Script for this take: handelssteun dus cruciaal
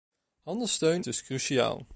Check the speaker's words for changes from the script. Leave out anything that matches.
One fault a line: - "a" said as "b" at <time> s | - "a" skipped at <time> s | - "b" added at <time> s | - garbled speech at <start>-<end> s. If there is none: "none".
none